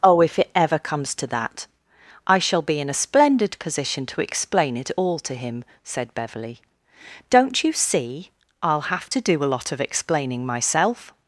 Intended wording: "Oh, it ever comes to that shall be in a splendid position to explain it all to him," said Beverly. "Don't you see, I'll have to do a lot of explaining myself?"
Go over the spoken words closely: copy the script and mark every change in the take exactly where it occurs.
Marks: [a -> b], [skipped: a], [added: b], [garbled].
"Oh, [added: if] it ever comes to that [added: I] shall be in a splendid position to explain it all to him," said Beverly. "Don't you see, I'll have to do a lot of explaining myself?"